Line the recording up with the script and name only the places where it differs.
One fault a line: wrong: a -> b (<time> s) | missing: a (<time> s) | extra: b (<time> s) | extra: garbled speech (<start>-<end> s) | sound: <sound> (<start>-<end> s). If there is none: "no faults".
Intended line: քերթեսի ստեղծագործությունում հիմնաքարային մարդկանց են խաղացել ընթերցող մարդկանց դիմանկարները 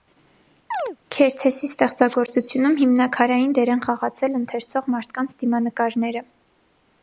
sound: chirp (0.7-1.0 s)
wrong: մարդկանց -> դեր (3.6 s)